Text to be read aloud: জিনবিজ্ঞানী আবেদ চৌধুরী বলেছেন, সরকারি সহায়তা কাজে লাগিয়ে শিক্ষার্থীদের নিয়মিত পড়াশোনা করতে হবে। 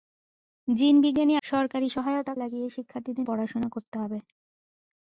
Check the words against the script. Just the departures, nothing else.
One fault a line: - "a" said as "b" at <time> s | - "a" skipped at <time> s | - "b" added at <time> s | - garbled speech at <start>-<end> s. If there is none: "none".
- "আবেদ চৌধুরী বলেছেন" skipped at 1.4 s
- "কাজে" skipped at 2.3 s
- "নিয়মিত" skipped at 3.3 s